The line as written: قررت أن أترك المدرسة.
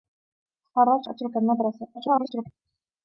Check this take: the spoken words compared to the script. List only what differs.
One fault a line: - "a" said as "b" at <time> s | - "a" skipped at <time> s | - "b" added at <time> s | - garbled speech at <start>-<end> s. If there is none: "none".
- "أن" skipped at 1.1 s
- garbled speech at 1.9-2.5 s